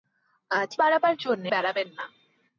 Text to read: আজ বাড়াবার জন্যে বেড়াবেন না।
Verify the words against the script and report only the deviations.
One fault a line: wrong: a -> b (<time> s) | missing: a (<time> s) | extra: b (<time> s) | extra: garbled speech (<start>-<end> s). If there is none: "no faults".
no faults